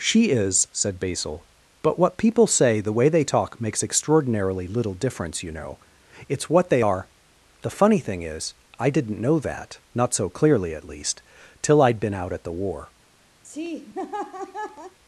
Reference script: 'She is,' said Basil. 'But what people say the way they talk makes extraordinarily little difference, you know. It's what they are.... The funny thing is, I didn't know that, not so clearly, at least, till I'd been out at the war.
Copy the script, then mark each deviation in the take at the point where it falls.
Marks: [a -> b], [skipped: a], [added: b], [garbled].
'She is,' said Basil. 'But what people say the way they talk makes extraordinarily little difference, you know. It's what they are.... The funny thing is, I didn't know that, not so clearly, at least, till I'd been out at the war.